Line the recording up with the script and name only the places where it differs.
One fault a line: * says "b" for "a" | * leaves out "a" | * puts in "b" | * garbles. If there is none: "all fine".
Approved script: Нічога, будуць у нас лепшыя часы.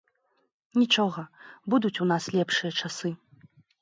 all fine